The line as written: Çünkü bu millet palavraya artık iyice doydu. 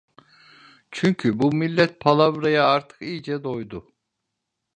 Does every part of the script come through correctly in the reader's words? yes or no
yes